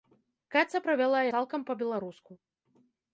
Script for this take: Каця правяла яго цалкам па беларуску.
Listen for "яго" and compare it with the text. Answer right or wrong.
wrong